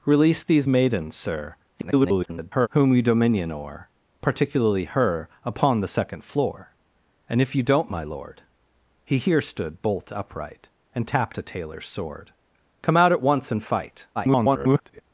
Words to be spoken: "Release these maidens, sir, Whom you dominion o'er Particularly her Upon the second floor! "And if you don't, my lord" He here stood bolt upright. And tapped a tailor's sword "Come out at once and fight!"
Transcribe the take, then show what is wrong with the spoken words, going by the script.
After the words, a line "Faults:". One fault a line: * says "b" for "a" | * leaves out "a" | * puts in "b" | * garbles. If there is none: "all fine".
"Release these maidens, sir, [garbled] Whom you dominion o'er Particularly her Upon the second floor! "And if you don't, my lord" He here stood bolt upright. And tapped a tailor's sword "Come out at once and fight!" [garbled]
Faults:
* garbles
* garbles